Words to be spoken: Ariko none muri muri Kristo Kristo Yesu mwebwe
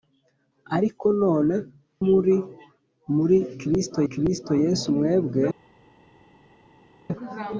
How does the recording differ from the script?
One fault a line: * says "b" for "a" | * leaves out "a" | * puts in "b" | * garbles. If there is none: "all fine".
all fine